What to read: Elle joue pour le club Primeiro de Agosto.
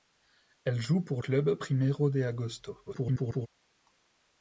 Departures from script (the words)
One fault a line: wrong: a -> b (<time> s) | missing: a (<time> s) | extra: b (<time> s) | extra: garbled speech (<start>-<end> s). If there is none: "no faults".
missing: le (1.2 s)
extra: garbled speech (2.8-3.5 s)